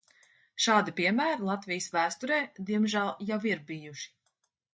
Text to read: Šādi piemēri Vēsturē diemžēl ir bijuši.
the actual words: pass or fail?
fail